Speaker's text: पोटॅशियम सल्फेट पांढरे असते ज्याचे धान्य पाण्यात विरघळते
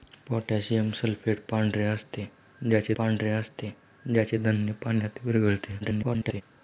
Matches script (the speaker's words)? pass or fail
fail